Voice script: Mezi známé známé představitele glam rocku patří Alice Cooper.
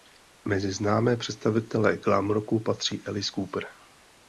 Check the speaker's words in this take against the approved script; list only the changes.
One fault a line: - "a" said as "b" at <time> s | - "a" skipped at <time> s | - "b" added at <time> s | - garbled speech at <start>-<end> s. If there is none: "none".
- "známé" skipped at 1.2 s